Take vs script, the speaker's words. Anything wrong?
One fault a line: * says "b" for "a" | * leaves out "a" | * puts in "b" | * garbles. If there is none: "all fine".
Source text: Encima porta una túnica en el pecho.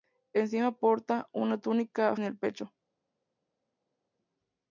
all fine